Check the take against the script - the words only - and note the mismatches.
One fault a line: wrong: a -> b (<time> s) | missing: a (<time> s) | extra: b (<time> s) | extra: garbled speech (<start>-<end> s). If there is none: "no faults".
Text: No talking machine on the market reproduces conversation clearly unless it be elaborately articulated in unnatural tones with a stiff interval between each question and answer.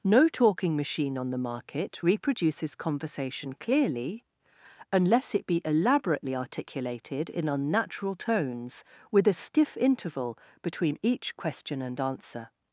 no faults